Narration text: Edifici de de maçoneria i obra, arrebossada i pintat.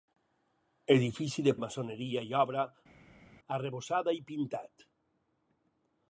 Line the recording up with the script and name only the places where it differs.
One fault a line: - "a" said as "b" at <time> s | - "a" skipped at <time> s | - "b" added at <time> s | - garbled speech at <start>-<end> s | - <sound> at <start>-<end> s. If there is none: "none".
none